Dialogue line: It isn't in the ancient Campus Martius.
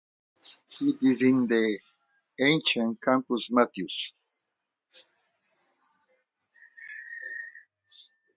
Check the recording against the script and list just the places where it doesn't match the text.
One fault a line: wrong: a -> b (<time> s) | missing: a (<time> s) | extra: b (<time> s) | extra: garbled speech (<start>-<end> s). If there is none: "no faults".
wrong: isn't -> is (1.0 s)